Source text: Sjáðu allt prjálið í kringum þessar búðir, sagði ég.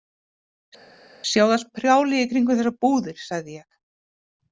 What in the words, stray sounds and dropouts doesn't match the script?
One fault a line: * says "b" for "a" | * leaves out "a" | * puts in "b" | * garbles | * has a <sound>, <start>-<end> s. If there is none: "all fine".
all fine